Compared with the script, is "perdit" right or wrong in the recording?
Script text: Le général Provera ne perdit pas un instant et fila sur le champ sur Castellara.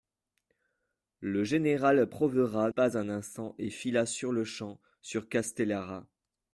wrong